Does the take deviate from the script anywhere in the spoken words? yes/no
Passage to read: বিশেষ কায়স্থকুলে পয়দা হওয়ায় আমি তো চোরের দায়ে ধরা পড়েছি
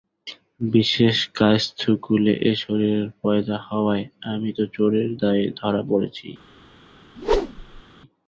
yes